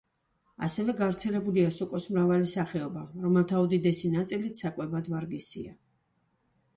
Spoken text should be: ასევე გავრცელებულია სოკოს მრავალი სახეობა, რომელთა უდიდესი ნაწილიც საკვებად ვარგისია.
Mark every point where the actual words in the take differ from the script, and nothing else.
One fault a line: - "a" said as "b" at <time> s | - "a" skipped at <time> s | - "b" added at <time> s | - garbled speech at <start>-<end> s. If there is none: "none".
none